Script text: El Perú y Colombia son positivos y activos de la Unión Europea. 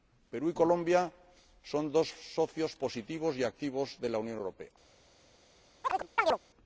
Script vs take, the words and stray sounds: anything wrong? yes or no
yes